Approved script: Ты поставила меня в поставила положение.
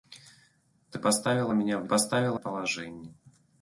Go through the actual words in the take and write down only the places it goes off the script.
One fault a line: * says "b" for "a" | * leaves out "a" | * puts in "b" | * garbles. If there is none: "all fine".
all fine